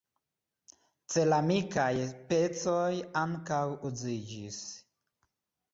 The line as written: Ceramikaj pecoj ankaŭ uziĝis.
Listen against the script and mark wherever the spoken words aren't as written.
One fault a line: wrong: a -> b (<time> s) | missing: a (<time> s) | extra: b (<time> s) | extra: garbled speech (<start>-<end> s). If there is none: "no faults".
no faults